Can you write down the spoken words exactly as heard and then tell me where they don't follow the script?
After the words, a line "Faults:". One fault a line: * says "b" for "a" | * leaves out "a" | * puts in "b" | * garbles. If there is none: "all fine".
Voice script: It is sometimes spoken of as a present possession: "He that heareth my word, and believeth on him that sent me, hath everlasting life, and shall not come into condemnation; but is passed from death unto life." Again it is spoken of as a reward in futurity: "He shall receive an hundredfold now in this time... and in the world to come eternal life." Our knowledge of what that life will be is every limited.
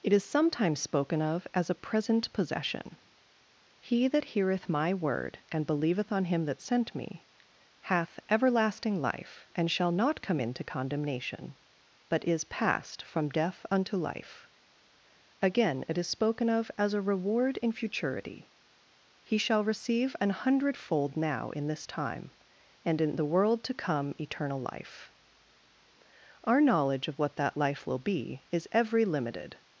It is sometimes spoken of as a present possession: "He that heareth my word, and believeth on him that sent me, hath everlasting life, and shall not come into condemnation; but is passed from death unto life." Again it is spoken of as a reward in futurity: "He shall receive an hundredfold now in this time... and in the world to come eternal life." Our knowledge of what that life will be is every limited.
Faults:
all fine